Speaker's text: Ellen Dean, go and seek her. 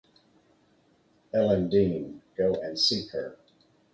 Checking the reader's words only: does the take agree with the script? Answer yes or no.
yes